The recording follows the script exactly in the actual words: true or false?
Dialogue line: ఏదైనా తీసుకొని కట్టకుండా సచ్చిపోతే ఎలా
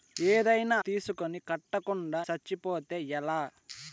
true